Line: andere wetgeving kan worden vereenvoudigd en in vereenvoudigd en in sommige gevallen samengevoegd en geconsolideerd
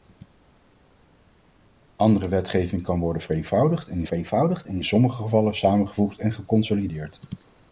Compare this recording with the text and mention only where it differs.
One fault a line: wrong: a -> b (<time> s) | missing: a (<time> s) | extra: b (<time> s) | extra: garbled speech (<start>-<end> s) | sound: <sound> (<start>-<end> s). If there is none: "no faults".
no faults